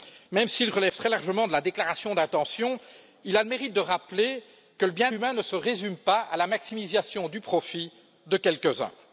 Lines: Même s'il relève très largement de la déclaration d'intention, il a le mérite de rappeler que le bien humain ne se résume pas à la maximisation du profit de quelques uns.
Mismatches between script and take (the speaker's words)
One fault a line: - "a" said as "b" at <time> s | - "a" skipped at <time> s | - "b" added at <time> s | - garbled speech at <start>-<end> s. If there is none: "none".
none